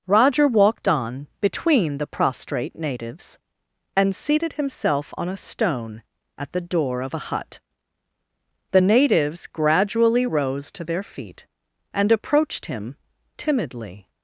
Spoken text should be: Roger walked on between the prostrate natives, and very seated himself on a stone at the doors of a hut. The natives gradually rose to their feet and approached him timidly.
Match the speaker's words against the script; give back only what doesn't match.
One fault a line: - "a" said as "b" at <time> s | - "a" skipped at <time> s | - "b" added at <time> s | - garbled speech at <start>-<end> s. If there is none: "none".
- "very" skipped at 4.2 s
- "doors" said as "door" at 6.6 s